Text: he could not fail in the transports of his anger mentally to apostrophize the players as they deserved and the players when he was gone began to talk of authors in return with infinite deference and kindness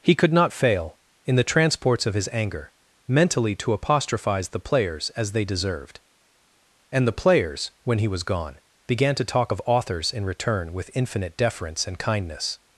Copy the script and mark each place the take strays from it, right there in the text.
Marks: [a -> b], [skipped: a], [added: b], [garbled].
he could not fail in the transports of his anger mentally to apostrophize the players as they deserved and the players when he was gone began to talk of authors in return with infinite deference and kindness